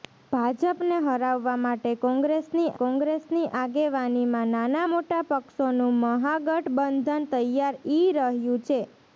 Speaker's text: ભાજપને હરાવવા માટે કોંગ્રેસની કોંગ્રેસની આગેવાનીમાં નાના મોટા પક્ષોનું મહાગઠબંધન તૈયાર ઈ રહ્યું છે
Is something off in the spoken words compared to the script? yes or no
no